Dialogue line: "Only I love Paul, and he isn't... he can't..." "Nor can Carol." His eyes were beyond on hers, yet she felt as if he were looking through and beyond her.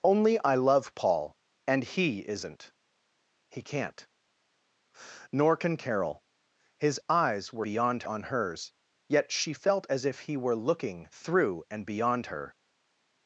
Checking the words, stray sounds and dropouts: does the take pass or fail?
pass